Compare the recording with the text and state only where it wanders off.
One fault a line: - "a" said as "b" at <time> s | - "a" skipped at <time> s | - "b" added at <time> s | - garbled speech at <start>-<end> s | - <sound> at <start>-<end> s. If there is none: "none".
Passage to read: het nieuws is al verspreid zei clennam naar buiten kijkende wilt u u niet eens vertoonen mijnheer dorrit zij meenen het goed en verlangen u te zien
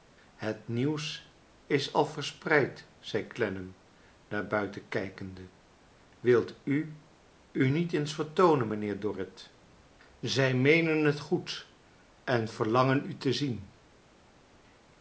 none